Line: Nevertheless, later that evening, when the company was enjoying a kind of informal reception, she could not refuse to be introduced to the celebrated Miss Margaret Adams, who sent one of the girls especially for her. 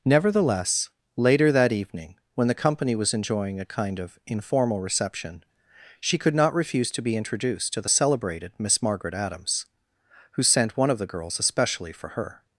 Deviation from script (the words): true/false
false